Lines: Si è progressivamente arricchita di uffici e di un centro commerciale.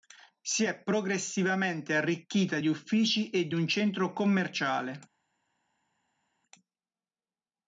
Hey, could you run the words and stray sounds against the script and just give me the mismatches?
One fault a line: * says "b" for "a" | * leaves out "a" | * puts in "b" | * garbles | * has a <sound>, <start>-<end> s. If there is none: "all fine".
all fine